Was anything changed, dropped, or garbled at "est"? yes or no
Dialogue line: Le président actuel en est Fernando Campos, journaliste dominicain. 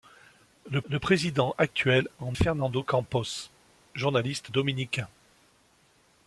yes